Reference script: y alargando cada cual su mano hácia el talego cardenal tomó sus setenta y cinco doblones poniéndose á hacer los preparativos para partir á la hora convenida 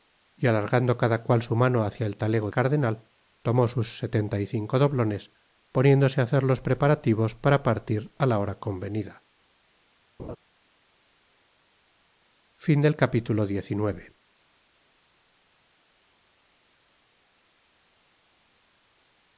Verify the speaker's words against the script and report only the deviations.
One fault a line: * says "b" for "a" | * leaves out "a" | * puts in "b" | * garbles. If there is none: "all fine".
all fine